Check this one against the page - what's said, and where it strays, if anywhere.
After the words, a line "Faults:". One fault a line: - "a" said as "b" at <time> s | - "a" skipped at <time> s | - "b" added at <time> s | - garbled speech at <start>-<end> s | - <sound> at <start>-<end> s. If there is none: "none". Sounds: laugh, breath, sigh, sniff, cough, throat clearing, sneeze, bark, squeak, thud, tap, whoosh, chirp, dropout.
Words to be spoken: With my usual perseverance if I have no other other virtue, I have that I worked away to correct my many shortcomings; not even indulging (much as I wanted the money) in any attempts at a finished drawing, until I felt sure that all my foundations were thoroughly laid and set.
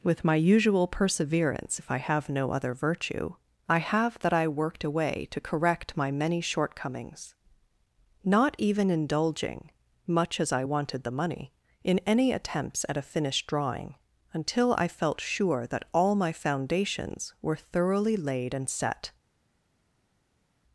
With my usual perseverance if I have no other virtue, I have that I worked away to correct my many shortcomings; not even indulging (much as I wanted the money) in any attempts at a finished drawing, until I felt sure that all my foundations were thoroughly laid and set.
Faults:
- "other" skipped at 2.7 s